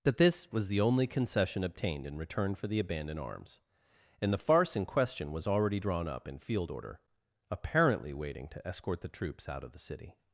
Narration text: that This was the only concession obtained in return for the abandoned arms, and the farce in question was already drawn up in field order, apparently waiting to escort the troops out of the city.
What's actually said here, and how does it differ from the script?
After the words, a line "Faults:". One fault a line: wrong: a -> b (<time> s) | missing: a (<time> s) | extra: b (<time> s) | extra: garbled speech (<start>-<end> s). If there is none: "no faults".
that This was the only concession obtained in return for the abandoned arms, and the farce in question was already drawn up in field order, apparently waiting to escort the troops out of the city.
Faults:
no faults